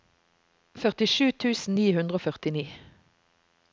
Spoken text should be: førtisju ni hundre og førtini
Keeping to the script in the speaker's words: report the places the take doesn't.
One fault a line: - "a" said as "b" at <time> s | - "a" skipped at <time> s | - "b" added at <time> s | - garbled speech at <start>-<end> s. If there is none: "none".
- "tusen" added at 1.4 s